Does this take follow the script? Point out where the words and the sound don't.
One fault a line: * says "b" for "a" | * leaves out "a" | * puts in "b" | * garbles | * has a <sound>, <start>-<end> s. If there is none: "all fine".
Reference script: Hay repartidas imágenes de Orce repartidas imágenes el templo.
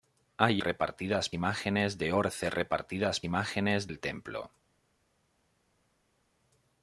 all fine